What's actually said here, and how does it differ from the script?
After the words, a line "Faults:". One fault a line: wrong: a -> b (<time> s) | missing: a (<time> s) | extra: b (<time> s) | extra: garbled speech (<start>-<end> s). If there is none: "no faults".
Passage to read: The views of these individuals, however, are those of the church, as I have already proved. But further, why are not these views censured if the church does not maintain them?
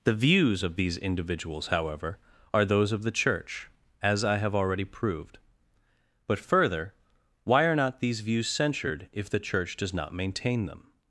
The views of these individuals, however, are those of the church, as I have already proved. But further, why are not these views censured if the church does not maintain them?
Faults:
no faults